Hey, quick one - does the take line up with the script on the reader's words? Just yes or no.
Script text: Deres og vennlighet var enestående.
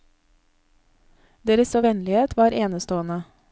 yes